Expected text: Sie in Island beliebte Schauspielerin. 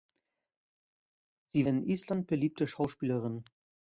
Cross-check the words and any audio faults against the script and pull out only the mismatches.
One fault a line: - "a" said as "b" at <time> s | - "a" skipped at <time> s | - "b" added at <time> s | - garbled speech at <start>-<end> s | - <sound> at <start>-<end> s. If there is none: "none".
none